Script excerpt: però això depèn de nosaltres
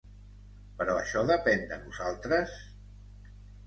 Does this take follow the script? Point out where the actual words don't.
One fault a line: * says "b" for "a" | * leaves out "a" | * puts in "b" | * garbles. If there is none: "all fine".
all fine